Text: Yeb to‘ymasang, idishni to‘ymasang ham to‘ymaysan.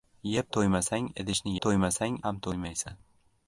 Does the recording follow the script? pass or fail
pass